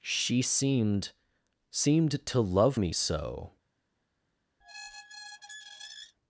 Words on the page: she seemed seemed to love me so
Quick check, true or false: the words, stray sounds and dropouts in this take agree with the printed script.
false